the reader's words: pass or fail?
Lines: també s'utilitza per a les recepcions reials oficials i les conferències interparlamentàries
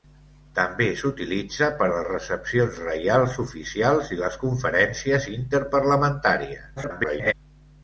fail